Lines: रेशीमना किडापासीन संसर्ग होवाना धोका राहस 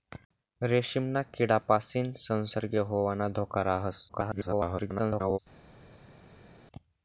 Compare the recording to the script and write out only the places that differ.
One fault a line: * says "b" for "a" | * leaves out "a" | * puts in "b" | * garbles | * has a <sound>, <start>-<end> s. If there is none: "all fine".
* garbles